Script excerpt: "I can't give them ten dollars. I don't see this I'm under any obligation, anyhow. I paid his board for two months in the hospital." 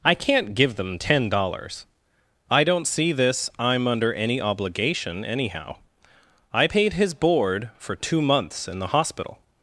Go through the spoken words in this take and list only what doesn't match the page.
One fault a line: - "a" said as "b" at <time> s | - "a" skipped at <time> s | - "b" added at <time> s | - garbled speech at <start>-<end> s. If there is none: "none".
none